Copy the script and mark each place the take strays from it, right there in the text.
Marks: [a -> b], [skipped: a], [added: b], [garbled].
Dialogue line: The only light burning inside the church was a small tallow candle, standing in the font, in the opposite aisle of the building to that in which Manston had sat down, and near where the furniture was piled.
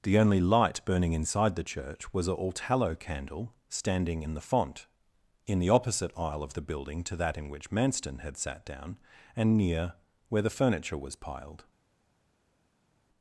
The only light burning inside the church was a [small -> all] tallow candle, standing in the font, in the opposite aisle of the building to that in which Manston had sat down, and near where the furniture was piled.